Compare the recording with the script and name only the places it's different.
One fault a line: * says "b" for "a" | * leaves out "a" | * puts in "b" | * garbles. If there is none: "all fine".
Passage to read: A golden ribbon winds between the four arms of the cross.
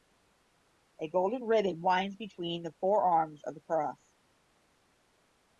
all fine